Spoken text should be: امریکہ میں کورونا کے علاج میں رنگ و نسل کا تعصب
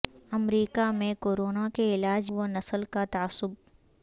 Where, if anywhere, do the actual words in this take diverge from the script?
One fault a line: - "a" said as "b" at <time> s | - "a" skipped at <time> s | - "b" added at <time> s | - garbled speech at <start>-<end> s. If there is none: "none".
- "میں رنگ" skipped at 2.3 s